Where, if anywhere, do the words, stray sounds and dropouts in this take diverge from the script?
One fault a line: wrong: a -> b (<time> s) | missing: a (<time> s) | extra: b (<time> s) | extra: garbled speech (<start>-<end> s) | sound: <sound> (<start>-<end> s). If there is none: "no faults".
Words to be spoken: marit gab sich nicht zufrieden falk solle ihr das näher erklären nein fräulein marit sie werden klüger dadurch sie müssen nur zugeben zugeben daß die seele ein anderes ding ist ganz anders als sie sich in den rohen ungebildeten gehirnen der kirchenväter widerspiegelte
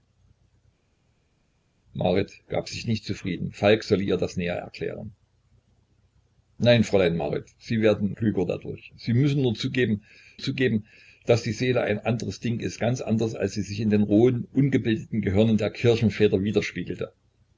no faults